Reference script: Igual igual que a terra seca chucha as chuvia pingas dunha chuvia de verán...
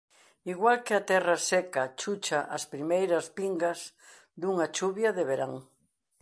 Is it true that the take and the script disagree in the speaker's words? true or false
true